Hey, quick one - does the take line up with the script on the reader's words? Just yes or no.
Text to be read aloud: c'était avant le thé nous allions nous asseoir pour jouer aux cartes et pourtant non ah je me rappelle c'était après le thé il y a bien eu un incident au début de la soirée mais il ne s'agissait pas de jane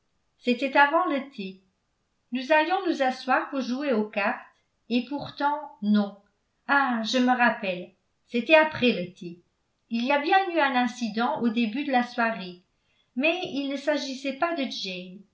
yes